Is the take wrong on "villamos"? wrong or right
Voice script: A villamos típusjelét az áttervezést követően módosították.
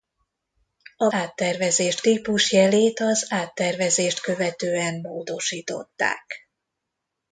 wrong